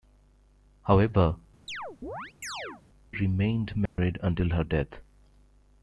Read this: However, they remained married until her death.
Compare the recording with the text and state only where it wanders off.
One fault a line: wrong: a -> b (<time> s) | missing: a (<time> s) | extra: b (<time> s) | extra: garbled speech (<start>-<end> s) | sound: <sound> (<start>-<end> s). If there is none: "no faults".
missing: they (1.4 s)
sound: chirp (1.7-2.8 s)
sound: dropout (3.9-4.0 s)